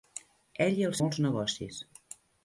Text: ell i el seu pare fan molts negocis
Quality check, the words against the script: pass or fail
fail